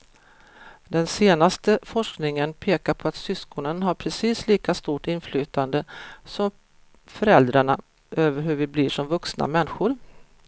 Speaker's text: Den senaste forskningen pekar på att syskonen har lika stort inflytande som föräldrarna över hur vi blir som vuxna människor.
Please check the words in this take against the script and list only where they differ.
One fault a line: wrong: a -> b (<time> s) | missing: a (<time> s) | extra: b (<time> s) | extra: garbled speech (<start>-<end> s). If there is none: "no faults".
extra: precis (3.9 s)